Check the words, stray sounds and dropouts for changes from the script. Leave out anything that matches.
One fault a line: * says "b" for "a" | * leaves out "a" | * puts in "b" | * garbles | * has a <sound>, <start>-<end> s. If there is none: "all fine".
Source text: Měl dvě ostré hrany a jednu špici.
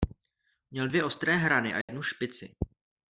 * has a dropout, 1.8-1.9 s